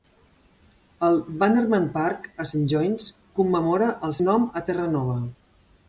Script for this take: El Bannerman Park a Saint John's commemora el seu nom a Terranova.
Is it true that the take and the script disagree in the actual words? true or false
true